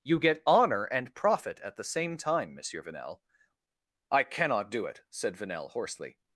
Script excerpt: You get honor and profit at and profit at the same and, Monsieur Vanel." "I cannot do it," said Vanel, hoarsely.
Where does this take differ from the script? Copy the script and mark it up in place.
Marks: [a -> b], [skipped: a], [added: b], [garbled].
You get honor and profit at [skipped: and profit at] the same [and, -> time] Monsieur Vanel." "I cannot do it," said Vanel, hoarsely.